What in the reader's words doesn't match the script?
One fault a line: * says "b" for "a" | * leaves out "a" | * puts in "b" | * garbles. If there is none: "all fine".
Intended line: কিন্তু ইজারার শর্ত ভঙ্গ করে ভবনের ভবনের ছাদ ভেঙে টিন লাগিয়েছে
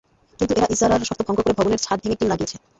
* puts in "এরা"
* leaves out "ভবনের"